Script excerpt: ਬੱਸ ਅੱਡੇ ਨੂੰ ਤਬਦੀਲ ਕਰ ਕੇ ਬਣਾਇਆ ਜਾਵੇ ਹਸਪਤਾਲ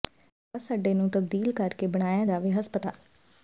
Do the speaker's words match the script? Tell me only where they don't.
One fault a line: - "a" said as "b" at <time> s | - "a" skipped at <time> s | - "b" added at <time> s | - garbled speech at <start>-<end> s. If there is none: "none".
none